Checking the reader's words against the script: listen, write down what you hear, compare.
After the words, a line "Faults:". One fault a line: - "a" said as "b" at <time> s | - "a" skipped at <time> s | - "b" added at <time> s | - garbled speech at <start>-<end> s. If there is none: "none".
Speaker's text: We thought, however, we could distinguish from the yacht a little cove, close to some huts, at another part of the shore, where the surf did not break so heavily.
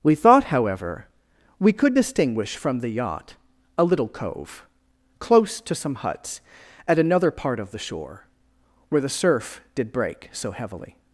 We thought, however, we could distinguish from the yacht a little cove, close to some huts, at another part of the shore, where the surf did break so heavily.
Faults:
- "not" skipped at 9.9 s